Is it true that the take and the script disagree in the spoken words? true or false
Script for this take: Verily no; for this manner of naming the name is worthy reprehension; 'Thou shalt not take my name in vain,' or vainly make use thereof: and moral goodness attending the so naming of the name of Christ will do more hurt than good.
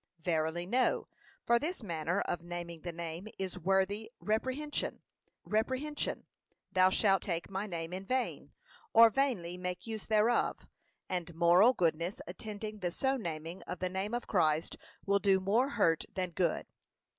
true